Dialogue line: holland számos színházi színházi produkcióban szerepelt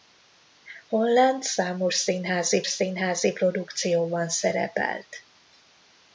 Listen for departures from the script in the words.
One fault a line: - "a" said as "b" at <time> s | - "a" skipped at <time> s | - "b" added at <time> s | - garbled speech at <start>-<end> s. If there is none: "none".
none